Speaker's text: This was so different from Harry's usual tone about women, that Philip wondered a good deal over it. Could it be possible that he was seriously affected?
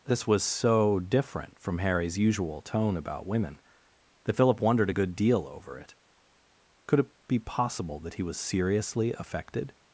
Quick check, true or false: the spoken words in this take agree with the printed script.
true